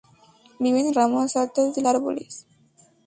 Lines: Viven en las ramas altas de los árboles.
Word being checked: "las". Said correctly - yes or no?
no